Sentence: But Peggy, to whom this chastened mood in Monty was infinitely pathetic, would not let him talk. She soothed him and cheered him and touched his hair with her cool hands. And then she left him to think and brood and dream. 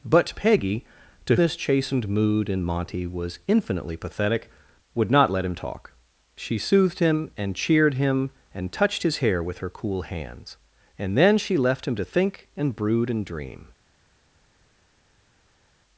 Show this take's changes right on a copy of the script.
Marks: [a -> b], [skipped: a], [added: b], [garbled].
But Peggy, to [skipped: whom] this chastened mood in Monty was infinitely pathetic, would not let him talk. She soothed him and cheered him and touched his hair with her cool hands. And then she left him to think and brood and dream.